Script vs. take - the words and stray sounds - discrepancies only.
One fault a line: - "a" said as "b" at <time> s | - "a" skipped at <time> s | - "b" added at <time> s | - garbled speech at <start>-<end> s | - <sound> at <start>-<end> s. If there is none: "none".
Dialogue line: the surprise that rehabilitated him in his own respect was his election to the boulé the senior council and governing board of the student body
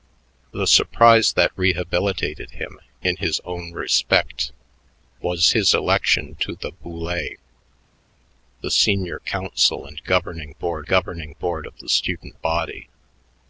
- "governing board" added at 10.9 s